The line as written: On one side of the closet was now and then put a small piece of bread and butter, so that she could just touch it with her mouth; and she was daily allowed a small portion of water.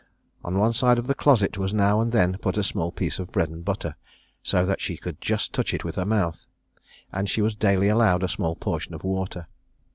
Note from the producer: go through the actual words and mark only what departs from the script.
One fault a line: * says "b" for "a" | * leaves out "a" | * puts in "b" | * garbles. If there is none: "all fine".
all fine